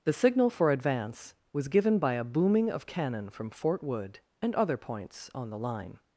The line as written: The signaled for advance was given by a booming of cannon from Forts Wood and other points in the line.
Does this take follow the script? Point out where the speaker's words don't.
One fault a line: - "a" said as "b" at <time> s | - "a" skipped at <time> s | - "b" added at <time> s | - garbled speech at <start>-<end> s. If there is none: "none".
- "signaled" said as "signal" at 0.1 s
- "Forts" said as "Fort" at 3.5 s
- "in" said as "on" at 5.3 s